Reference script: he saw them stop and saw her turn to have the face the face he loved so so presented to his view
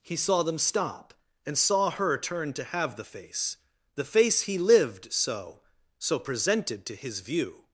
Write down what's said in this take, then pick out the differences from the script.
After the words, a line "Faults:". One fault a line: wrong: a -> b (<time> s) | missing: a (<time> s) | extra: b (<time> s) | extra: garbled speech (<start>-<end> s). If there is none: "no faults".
he saw them stop and saw her turn to have the face the face he lived so so presented to his view
Faults:
wrong: loved -> lived (4.6 s)